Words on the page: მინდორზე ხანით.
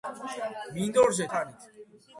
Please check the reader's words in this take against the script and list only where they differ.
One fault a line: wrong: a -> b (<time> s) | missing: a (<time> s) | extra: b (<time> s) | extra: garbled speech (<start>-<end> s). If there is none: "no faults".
no faults